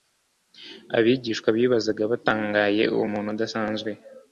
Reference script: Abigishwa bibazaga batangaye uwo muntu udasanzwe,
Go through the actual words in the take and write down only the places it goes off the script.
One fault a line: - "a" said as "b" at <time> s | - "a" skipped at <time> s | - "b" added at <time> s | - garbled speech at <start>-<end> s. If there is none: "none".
none